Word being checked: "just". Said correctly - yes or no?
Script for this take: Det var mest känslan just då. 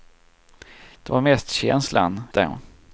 no